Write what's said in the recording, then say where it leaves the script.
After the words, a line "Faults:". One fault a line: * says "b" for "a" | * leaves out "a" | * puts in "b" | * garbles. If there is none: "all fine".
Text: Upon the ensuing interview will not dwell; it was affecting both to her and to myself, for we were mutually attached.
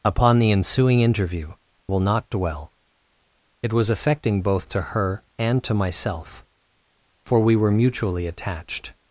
Upon the ensuing interview will not dwell; it was affecting both to her and to myself, for we were mutually attached.
Faults:
all fine